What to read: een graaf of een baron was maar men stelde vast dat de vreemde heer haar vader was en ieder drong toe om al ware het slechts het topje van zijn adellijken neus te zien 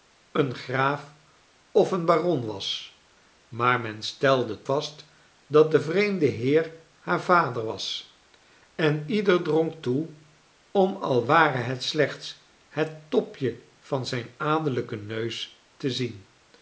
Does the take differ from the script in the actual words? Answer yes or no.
no